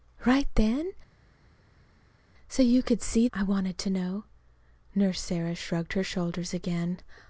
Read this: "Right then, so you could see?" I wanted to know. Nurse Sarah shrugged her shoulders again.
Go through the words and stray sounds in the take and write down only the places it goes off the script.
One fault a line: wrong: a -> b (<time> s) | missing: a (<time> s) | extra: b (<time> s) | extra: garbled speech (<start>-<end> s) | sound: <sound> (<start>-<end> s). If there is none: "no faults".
no faults